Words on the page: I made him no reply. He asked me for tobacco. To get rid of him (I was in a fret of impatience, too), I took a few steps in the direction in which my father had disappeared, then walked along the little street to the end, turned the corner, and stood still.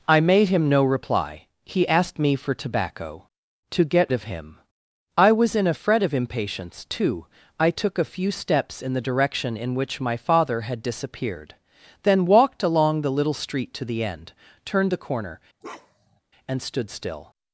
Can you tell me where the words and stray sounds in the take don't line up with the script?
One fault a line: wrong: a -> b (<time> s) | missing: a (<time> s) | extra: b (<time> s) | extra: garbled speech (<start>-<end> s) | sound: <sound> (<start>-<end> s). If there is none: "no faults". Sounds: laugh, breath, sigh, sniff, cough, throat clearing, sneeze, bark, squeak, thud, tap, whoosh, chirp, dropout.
missing: rid (4.1 s)
sound: bark (15.6-16.2 s)